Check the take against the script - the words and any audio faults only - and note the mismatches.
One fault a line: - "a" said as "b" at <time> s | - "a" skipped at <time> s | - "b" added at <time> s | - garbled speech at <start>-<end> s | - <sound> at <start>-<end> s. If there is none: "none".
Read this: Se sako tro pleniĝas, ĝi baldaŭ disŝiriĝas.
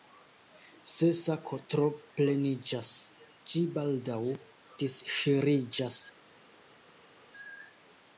none